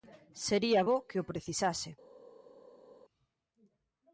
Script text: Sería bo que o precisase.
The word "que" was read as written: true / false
true